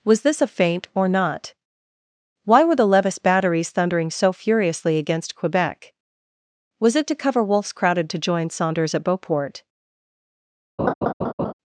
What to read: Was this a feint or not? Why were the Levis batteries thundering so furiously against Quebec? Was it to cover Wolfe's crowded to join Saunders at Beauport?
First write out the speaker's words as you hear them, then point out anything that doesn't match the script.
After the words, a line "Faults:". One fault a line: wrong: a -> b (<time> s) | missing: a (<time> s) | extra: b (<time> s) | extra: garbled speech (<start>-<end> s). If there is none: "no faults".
Was this a feint or not? Why were the Levis batteries thundering so furiously against Quebec? Was it to cover Wolfe's crowded to join Saunders at Beauport?
Faults:
no faults